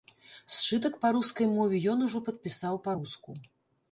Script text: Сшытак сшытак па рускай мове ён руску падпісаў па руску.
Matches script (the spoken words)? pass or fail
fail